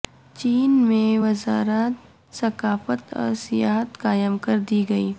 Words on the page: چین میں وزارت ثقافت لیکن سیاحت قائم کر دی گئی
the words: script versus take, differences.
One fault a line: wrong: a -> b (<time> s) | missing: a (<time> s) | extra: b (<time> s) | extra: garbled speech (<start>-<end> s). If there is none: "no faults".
wrong: لیکن -> اور (3.1 s)